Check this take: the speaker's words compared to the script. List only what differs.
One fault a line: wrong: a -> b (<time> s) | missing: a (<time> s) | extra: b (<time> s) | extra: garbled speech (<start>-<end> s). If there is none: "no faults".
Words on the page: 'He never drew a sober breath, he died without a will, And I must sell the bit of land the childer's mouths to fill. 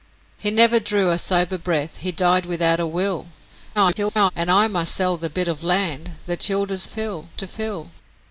extra: garbled speech (3.7-4.3 s)
wrong: mouths -> fill (6.9 s)